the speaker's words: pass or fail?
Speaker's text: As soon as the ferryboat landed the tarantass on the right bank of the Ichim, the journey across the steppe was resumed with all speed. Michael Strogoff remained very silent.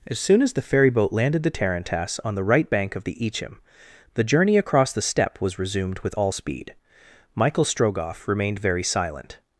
pass